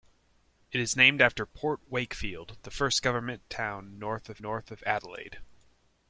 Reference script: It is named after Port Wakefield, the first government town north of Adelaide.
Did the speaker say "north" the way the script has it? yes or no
yes